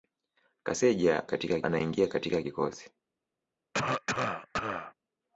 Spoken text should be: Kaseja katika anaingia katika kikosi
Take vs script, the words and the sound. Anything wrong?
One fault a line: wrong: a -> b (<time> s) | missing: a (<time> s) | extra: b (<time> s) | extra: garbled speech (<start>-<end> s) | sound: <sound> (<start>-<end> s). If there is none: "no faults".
sound: cough (3.7-4.9 s)